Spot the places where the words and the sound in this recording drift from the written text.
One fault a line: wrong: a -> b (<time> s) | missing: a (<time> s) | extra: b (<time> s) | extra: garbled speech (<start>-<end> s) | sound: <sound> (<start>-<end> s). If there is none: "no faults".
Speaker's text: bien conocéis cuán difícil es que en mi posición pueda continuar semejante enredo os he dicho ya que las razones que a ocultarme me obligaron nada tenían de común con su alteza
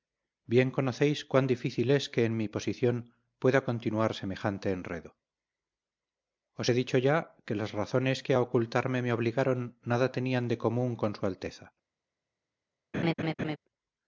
sound: laugh (12.9-13.6 s)